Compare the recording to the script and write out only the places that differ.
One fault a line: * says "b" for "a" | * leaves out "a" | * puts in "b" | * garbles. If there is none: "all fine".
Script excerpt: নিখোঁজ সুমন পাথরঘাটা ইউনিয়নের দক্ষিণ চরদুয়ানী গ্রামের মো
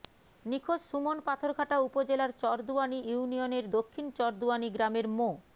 * puts in "উপজেলার চরদুয়ানী"